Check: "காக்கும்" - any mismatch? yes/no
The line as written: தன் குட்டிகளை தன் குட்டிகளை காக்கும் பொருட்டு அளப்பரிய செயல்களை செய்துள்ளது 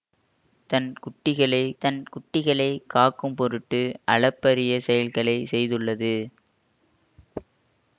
no